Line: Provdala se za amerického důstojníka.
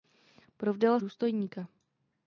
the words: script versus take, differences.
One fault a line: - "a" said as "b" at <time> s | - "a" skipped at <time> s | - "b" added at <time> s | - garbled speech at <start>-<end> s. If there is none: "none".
- "se za amerického" skipped at 1.0 s